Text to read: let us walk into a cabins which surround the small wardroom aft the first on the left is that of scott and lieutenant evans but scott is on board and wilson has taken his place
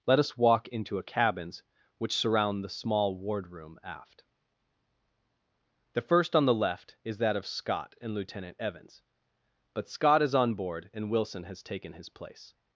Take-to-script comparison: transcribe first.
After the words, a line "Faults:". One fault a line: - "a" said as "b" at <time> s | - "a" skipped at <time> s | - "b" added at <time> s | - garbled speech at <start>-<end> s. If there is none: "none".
let us walk into a cabins which surround the small wardroom aft the first on the left is that of scott and lieutenant evans but scott is on board and wilson has taken his place
Faults:
none